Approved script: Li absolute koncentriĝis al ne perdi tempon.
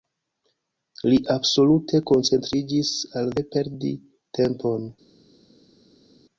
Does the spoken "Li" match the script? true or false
true